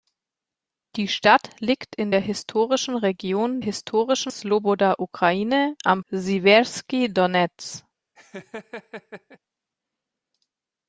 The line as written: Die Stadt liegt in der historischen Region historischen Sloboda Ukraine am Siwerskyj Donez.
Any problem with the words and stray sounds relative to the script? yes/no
yes